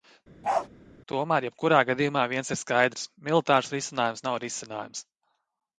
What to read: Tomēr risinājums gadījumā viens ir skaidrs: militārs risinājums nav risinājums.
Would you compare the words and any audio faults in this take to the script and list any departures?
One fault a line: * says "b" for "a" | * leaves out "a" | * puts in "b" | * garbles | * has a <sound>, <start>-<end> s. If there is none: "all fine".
* has a bark, 0.4-0.7 s
* says "jebkurā" for "risinājums"